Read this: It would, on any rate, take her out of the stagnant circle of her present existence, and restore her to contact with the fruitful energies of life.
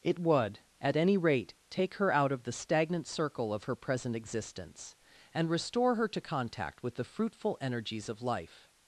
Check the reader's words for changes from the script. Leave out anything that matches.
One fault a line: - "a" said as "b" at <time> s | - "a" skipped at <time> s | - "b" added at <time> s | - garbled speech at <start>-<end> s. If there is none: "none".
- "on" said as "at" at 0.8 s